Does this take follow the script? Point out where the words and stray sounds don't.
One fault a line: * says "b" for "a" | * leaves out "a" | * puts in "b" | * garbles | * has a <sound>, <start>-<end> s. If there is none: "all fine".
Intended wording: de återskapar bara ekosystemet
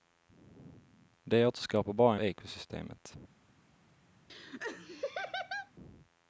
* has a laugh, 4.3-5.7 s